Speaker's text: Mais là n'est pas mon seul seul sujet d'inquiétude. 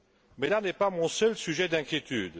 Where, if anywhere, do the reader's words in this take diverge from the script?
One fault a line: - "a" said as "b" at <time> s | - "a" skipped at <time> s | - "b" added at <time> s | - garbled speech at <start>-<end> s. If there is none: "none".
- "seul" skipped at 1.3 s